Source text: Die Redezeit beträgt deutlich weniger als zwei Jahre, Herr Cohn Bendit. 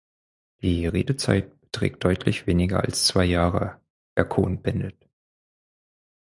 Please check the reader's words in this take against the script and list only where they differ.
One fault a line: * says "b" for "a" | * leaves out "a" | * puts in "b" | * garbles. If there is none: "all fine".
all fine